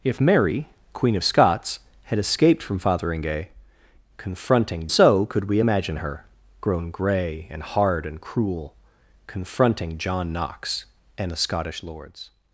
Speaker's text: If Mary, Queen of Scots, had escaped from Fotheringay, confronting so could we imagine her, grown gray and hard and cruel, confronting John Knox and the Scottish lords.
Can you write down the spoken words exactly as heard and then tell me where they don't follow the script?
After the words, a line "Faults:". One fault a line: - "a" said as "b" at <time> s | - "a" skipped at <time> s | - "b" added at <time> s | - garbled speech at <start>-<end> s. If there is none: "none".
If Mary, Queen of Scots, had escaped from Fotheringay, confronting so could we imagine her, grown gray and hard and cruel, confronting John Knox and the Scottish lords.
Faults:
none